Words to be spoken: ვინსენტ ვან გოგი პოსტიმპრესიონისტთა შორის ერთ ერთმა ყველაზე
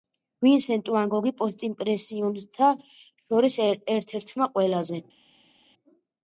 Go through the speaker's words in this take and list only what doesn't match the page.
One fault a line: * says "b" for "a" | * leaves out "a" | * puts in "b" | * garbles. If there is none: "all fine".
all fine